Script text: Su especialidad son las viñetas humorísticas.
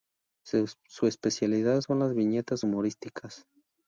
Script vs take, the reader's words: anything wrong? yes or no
no